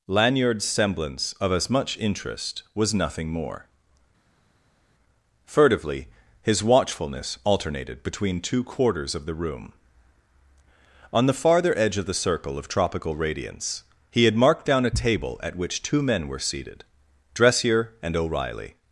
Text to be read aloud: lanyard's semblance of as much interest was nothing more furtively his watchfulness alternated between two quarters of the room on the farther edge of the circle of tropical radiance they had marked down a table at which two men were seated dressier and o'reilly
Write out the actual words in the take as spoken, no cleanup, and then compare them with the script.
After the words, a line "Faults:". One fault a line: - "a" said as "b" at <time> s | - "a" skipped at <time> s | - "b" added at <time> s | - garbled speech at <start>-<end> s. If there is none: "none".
lanyard's semblance of as much interest was nothing more furtively his watchfulness alternated between two quarters of the room on the farther edge of the circle of tropical radiance he had marked down a table at which two men were seated dressier and o'reilly
Faults:
- "they" said as "he" at 14.1 s